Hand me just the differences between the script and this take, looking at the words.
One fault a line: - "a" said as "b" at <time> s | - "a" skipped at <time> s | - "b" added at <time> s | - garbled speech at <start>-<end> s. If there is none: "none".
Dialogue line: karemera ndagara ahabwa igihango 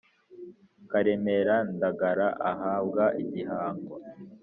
none